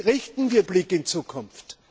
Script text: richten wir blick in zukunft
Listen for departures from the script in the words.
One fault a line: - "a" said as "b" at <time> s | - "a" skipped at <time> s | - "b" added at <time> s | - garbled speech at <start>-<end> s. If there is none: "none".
none